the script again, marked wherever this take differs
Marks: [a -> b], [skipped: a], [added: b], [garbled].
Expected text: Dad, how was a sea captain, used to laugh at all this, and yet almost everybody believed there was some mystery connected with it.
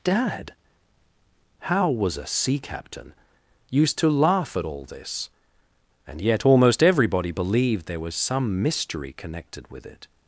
Dad, how was a sea captain, used to laugh at all this, and yet almost everybody believed there was some mystery connected with it.